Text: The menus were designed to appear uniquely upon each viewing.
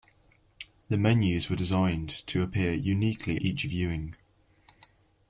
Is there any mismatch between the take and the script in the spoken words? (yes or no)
yes